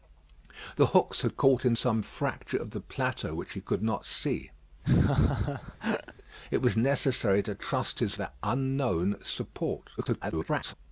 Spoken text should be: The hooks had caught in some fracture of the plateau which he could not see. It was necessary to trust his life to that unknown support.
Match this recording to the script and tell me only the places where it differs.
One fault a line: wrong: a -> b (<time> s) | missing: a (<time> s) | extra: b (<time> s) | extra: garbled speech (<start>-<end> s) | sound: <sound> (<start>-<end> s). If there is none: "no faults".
sound: laugh (4.8-6.1 s)
missing: life to (8.2 s)
extra: garbled speech (10.0-10.7 s)